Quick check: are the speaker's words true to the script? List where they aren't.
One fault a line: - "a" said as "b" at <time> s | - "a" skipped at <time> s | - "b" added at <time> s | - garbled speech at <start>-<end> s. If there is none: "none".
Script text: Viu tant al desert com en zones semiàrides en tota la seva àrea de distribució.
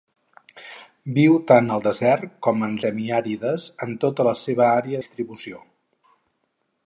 - "zones" skipped at 2.7 s
- "de" skipped at 5.0 s